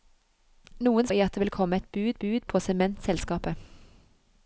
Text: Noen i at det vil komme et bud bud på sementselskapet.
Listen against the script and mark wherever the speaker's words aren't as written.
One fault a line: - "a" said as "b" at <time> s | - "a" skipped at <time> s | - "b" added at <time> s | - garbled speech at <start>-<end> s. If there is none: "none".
none